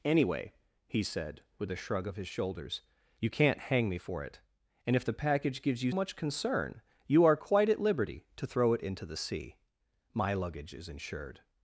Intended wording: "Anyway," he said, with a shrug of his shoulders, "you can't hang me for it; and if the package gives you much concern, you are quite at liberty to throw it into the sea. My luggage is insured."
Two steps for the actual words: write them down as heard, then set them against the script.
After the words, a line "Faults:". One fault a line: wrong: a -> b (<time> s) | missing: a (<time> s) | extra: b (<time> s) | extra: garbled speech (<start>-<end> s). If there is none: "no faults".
"Anyway," he said, with a shrug of his shoulders, "you can't hang me for it; and if the package gives you much concern, you are quite at liberty to throw it into the sea. My luggage is insured."
Faults:
no faults